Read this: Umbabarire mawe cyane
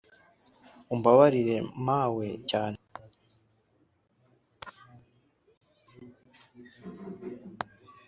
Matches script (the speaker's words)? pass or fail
pass